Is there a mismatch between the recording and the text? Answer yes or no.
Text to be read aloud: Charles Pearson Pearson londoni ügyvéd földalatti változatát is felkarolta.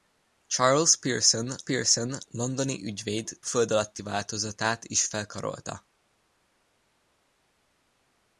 no